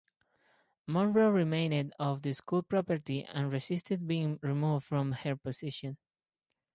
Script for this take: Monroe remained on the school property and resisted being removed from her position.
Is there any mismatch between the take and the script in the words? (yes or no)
no